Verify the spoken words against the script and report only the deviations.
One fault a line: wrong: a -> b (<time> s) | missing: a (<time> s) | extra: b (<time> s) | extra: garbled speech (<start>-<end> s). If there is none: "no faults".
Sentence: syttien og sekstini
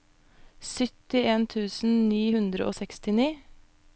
extra: tusen ni hundre (1.5 s)